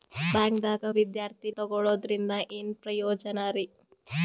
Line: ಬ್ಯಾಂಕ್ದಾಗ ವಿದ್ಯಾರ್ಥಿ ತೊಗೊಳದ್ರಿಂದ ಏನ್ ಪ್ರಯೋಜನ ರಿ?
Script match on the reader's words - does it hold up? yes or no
yes